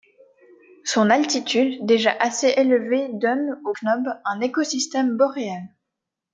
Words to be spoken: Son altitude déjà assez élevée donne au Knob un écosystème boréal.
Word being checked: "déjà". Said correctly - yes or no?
yes